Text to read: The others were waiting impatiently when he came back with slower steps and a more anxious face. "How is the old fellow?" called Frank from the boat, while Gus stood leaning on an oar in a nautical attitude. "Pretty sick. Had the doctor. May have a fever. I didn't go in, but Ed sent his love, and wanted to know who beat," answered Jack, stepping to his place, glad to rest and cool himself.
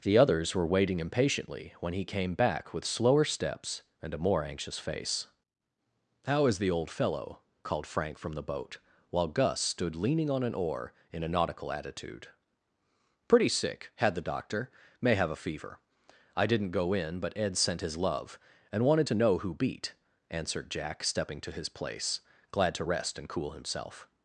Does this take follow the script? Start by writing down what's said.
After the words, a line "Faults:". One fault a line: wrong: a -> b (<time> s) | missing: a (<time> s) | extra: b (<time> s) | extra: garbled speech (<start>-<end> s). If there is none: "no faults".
The others were waiting impatiently when he came back with slower steps and a more anxious face. "How is the old fellow?" called Frank from the boat, while Gus stood leaning on an oar in a nautical attitude. "Pretty sick. Had the doctor. May have a fever. I didn't go in, but Ed sent his love, and wanted to know who beat," answered Jack, stepping to his place, glad to rest and cool himself.
Faults:
no faults